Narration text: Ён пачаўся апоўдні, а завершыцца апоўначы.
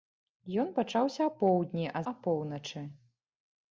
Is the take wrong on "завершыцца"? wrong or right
wrong